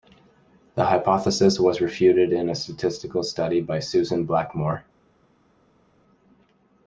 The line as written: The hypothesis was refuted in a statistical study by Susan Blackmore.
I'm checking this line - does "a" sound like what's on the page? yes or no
yes